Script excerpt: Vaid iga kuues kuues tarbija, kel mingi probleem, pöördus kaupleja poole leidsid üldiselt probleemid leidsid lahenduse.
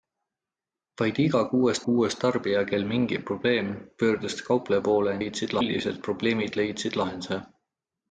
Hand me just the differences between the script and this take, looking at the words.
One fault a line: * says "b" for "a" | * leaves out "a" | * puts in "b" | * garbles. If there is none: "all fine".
all fine